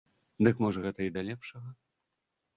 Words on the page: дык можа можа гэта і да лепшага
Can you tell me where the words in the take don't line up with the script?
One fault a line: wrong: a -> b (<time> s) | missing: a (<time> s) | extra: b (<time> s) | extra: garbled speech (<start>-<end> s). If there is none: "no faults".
missing: можа (0.8 s)